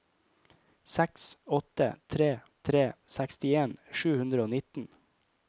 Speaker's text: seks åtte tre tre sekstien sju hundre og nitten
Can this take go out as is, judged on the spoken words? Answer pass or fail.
pass